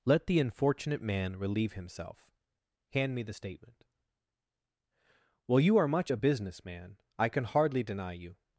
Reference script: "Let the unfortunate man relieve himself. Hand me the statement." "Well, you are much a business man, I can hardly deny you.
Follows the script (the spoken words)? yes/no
yes